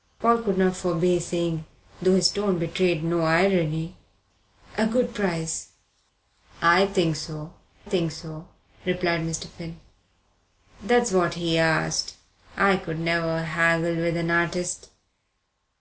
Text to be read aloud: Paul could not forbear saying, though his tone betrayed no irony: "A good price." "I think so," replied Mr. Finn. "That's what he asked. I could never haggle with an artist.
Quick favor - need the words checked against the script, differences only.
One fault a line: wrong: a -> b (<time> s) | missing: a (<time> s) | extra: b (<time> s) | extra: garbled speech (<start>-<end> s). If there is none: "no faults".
extra: think so (7.8 s)